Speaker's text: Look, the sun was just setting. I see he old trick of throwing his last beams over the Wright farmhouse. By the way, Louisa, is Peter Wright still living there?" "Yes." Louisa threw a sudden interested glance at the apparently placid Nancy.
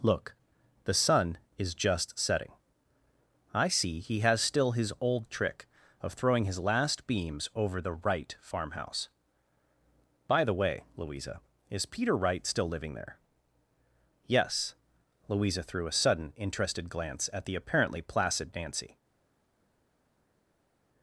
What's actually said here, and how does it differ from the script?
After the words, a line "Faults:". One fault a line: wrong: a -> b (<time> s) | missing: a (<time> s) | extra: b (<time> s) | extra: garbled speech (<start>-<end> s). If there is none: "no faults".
Look, the sun is just setting. I see he has still his old trick of throwing his last beams over the Wright farmhouse. By the way, Louisa, is Peter Wright still living there?" "Yes." Louisa threw a sudden interested glance at the apparently placid Nancy.
Faults:
wrong: was -> is (1.6 s)
extra: has still his (4.2 s)